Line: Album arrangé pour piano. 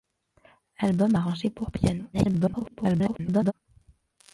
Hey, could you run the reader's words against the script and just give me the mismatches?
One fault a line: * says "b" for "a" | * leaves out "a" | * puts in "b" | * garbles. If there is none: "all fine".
* garbles